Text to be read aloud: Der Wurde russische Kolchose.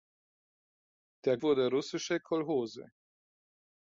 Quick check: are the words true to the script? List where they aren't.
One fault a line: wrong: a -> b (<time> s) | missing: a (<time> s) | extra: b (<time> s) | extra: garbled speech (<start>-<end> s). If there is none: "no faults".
no faults